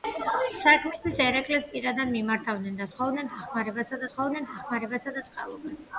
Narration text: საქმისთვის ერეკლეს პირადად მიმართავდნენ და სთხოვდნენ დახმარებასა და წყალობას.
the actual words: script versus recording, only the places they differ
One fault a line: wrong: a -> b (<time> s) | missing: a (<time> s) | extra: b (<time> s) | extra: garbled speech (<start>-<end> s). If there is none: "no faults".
extra: სთხოვდნენ დახმარებასა (4.1 s)